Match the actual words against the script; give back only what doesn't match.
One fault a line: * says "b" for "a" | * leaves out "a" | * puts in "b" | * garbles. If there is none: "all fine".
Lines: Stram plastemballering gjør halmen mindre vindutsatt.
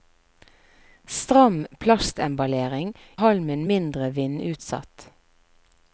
* leaves out "gjør"